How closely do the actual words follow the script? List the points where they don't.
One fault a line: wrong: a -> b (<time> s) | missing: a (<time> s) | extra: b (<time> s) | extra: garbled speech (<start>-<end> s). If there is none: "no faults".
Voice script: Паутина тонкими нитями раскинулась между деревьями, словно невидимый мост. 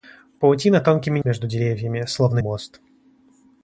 missing: нитями раскинулась (1.2 s)
missing: невидимый (2.4 s)